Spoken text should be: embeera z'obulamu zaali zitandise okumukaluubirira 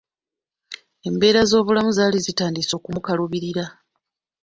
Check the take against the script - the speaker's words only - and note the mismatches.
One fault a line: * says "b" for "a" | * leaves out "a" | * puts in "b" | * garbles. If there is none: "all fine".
all fine